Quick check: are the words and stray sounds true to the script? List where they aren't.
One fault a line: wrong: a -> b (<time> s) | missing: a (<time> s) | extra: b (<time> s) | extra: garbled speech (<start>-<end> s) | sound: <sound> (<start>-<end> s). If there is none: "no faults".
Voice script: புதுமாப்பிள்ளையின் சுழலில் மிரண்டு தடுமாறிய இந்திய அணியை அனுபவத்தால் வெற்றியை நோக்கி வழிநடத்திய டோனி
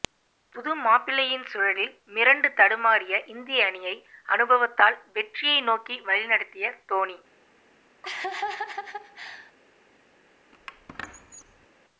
sound: laugh (8.0-9.5 s)
sound: squeak (10.5-11.7 s)